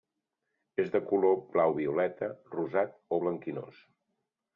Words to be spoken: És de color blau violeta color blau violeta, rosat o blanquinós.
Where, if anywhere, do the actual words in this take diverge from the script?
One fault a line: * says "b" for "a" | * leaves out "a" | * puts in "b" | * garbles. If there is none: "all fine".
* leaves out "color blau violeta"